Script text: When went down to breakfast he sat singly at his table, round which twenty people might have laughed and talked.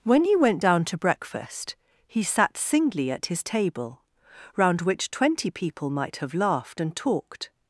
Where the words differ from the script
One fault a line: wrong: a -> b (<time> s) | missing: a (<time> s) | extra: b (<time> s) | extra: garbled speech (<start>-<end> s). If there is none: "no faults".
extra: he (0.2 s)